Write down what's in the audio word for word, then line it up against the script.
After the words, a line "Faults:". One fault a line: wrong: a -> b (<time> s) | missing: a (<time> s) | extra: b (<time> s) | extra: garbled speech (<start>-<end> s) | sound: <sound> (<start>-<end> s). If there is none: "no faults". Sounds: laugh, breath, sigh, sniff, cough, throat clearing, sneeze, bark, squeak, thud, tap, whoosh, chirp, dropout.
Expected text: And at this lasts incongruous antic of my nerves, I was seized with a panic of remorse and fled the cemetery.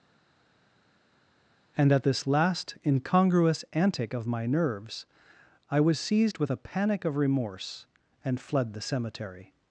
And at this last incongruous antic of my nerves, I was seized with a panic of remorse and fled the cemetery.
Faults:
wrong: lasts -> last (2.3 s)